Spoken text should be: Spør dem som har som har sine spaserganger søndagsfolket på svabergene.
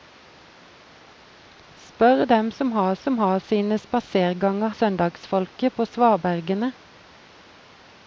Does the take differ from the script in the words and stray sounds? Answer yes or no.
no